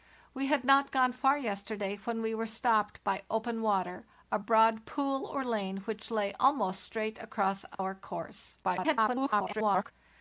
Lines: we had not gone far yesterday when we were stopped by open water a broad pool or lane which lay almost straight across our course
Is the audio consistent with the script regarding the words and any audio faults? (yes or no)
no